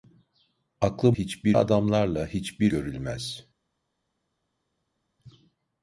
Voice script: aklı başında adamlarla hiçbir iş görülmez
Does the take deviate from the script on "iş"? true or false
true